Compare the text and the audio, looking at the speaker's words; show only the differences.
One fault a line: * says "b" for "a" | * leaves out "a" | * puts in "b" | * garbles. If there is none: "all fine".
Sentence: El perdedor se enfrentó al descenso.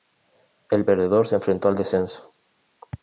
all fine